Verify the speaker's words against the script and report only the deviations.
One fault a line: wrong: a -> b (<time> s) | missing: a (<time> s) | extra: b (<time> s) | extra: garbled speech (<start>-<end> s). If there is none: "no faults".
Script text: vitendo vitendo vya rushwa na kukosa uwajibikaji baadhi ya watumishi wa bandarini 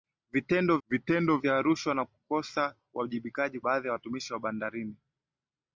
no faults